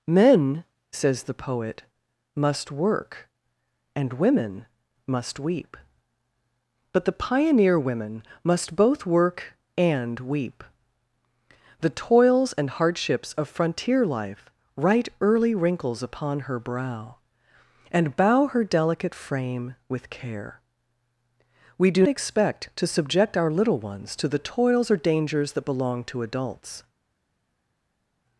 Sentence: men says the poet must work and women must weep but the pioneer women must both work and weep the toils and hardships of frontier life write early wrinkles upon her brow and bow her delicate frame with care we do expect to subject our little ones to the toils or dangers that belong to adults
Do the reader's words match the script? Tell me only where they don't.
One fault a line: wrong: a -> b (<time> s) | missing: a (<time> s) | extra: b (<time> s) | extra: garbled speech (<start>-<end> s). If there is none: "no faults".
no faults